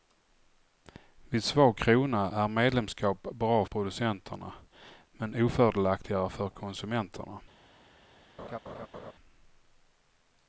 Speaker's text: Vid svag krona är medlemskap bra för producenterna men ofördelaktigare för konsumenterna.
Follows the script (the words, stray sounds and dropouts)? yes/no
no